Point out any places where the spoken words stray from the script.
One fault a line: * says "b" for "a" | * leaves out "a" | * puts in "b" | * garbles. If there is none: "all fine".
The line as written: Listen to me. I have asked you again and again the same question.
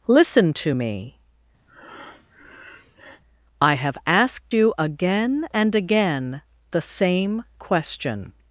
all fine